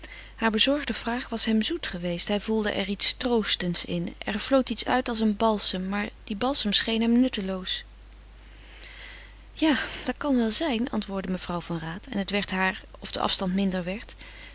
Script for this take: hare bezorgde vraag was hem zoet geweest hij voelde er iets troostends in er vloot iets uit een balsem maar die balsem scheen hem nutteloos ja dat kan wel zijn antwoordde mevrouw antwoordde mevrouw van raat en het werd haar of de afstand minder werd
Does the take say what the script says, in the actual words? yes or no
no